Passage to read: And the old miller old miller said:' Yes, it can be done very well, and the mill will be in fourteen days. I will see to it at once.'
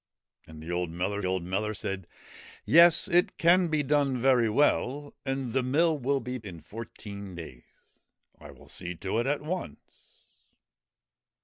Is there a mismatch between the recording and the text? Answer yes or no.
no